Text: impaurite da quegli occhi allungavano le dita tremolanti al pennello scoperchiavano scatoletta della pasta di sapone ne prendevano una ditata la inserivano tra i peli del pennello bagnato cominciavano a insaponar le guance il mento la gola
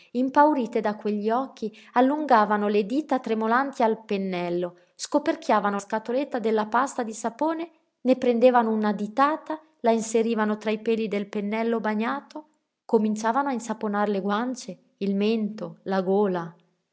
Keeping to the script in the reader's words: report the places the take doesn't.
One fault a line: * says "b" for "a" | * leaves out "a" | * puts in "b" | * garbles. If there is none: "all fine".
all fine